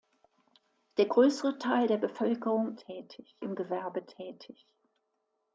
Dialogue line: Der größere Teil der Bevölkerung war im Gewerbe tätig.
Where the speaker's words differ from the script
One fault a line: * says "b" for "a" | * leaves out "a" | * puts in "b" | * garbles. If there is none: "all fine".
* says "tätig" for "war"